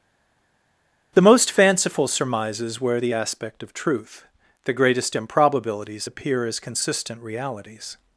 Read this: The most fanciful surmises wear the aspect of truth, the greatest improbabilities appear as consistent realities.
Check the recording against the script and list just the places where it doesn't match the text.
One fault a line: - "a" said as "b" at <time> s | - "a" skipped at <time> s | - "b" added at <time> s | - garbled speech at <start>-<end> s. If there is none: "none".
none